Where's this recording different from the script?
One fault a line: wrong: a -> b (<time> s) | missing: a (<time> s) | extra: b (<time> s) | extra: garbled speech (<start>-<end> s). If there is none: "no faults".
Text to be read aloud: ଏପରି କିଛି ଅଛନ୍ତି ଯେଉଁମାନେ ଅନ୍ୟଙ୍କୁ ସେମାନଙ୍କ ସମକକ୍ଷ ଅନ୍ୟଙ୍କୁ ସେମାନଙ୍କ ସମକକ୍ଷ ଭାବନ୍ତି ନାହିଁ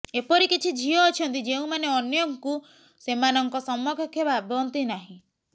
extra: ଝିଅ (0.8 s)
missing: ଅନ୍ୟଙ୍କୁ ସେମାନଙ୍କ ସମକକ୍ଷ (4.3 s)